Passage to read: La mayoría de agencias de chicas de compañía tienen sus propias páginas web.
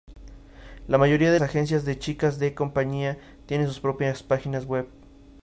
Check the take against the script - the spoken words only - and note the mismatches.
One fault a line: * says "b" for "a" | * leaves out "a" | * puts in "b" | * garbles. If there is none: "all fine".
all fine